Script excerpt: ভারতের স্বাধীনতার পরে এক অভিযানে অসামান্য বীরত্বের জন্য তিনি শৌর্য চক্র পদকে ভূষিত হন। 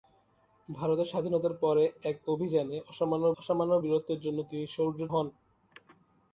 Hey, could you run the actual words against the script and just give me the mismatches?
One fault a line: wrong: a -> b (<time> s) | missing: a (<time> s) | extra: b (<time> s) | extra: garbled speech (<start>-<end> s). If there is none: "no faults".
extra: অসামান্য (3.4 s)
missing: চক্র পদকে ভূষিত (5.0 s)